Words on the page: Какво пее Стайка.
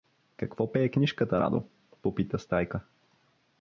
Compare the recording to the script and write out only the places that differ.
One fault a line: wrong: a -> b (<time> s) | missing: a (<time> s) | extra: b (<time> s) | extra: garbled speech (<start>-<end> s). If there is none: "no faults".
extra: книжката Радо попита (0.9 s)